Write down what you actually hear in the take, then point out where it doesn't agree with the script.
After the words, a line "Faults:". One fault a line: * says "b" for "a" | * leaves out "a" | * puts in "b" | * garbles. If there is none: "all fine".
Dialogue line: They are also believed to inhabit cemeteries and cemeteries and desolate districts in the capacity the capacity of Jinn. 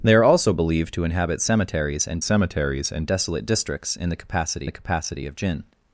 They are also believed to inhabit cemeteries and cemeteries and desolate districts in the capacity the capacity of Jinn.
Faults:
all fine